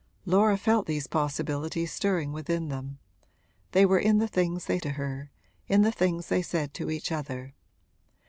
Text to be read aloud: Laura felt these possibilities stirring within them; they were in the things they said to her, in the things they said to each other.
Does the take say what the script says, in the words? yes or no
no